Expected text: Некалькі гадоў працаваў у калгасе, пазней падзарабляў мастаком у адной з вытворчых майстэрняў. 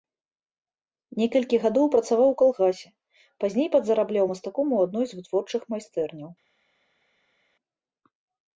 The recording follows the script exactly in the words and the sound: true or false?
true